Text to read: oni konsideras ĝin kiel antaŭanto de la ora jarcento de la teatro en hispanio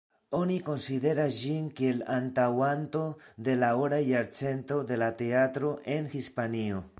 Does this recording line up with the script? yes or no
yes